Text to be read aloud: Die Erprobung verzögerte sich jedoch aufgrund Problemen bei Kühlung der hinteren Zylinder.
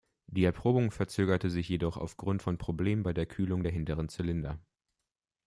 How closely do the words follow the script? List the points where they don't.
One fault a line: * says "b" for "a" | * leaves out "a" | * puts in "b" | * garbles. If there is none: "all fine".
* puts in "von"
* puts in "der"